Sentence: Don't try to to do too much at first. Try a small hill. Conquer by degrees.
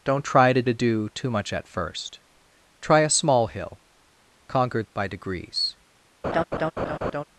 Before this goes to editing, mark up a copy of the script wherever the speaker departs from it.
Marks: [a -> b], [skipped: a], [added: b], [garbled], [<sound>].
Don't try to to do too much at first. Try a small hill. Conquer by degrees. [laugh]